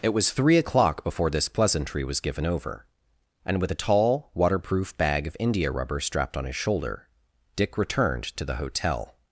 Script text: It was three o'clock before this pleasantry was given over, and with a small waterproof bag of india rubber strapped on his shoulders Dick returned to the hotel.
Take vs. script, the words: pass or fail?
fail